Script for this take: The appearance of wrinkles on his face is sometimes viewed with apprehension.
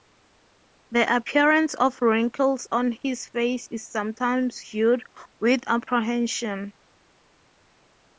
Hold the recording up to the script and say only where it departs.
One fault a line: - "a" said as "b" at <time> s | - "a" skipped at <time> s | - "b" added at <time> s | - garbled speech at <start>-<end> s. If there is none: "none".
none